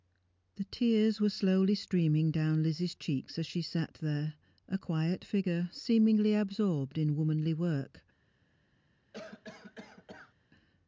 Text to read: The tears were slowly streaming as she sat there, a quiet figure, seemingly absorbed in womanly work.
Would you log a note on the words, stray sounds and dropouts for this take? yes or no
yes